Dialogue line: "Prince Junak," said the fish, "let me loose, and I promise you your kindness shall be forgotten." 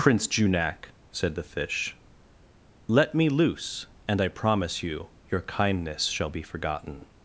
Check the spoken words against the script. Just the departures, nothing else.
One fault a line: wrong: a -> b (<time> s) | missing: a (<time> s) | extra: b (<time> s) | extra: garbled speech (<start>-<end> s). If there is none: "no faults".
no faults